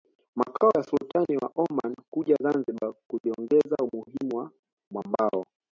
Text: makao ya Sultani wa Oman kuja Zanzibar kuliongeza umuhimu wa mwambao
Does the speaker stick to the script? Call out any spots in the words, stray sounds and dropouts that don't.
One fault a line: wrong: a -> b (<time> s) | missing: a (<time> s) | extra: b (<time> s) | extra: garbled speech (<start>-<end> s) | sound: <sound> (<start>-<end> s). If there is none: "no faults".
no faults